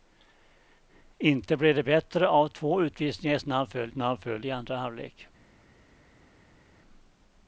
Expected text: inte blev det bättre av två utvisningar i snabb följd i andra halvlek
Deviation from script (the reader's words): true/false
true